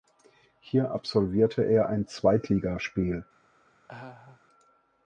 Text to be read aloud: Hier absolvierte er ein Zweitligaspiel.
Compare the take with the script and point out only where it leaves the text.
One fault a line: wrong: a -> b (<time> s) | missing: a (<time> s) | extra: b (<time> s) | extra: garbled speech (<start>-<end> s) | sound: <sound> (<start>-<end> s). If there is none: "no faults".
sound: laugh (3.9-4.4 s)